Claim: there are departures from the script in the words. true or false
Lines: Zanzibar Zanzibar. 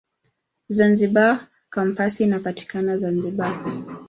true